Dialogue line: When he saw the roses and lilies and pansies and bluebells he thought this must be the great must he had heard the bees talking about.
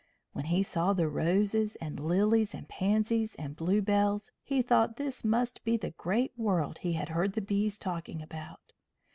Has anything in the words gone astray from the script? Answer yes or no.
yes